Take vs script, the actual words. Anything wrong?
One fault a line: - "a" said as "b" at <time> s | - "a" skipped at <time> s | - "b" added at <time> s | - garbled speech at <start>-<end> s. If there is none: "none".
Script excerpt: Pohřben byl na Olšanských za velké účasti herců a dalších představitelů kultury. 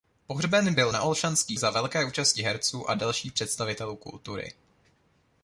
none